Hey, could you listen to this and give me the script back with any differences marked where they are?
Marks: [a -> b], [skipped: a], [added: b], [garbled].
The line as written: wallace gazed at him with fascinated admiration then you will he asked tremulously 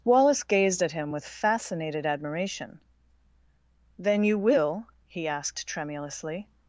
wallace gazed at him with fascinated admiration then you will he asked tremulously